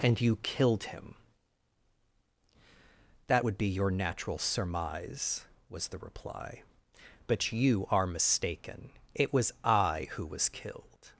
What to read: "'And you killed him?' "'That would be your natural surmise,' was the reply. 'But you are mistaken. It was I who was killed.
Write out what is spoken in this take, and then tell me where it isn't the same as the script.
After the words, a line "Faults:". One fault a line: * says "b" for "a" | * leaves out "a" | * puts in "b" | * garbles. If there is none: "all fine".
"'And you killed him?' "'That would be your natural surmise,' was the reply. 'But you are mistaken. It was I who was killed.
Faults:
all fine